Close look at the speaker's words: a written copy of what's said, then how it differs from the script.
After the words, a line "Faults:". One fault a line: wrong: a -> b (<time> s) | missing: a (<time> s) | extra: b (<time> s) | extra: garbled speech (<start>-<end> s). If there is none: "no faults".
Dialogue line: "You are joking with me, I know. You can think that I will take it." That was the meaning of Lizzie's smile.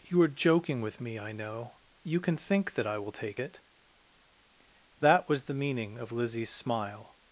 "You are joking with me, I know. You can think that I will take it." That was the meaning of Lizzie's smile.
Faults:
no faults